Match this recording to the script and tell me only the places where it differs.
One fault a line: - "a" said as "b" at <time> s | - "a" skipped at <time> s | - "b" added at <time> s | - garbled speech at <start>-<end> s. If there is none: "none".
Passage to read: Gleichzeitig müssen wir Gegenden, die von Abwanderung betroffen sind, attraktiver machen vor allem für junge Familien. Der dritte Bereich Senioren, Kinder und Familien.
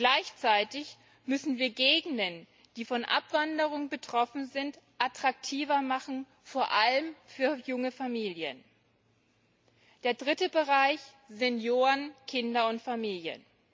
none